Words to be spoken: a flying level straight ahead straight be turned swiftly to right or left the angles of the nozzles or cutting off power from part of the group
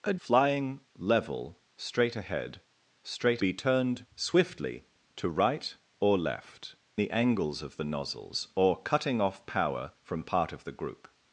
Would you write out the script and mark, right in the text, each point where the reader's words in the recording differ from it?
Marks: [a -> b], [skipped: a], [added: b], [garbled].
a flying level straight ahead straight be turned swiftly to right or left the angles of the nozzles or cutting off power from part of the group